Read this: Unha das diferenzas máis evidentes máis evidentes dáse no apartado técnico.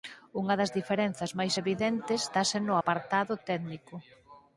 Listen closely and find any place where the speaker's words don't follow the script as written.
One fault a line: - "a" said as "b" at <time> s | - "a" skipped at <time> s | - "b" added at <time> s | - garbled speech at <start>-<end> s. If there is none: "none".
- "máis evidentes" skipped at 2.2 s